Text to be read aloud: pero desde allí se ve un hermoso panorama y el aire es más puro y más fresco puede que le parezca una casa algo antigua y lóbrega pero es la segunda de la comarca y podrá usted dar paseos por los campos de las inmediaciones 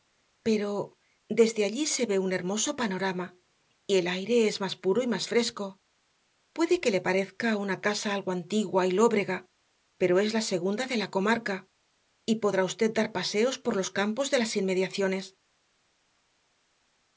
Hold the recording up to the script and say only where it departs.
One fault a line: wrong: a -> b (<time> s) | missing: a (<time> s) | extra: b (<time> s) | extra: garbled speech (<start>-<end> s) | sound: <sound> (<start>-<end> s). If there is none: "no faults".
no faults